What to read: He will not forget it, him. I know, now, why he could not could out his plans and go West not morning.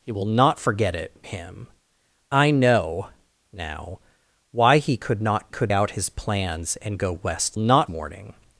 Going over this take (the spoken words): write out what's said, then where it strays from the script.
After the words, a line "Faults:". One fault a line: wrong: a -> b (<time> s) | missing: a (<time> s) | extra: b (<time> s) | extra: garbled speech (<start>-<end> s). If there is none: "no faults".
He will not forget it, him. I know, now, why he could not could out his plans and go West not morning.
Faults:
no faults